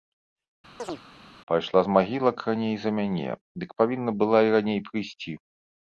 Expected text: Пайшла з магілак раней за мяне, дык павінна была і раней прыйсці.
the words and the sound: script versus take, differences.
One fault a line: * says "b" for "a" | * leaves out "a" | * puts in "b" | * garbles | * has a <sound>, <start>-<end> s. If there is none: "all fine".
* has a chirp, 0.8-1.0 s